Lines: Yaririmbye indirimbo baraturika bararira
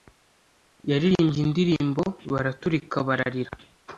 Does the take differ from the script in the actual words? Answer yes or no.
no